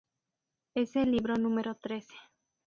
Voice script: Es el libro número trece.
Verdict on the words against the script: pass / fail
pass